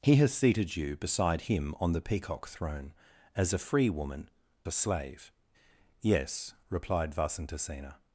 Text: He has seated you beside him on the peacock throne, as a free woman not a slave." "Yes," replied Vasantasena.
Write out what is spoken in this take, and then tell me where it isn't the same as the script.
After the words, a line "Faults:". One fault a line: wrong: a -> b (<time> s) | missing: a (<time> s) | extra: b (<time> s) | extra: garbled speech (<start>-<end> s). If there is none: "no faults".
He has seated you beside him on the peacock throne, as a free woman a slave." "Yes," replied Vasantasena.
Faults:
missing: not (4.3 s)